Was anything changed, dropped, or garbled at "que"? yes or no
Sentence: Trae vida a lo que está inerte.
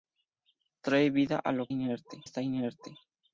yes